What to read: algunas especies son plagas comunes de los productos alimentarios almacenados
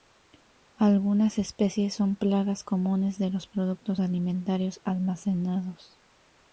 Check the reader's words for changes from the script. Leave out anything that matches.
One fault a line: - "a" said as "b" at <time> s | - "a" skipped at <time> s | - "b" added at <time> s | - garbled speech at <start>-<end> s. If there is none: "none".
none